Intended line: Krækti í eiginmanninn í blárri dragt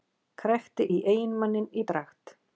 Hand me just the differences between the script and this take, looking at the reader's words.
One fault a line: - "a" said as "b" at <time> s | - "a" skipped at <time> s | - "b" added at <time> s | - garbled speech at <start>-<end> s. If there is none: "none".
- "blárri" skipped at 1.8 s